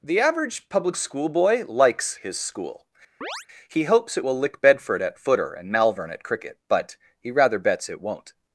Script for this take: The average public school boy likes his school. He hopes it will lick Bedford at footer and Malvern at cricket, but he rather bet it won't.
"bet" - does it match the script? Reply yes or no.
no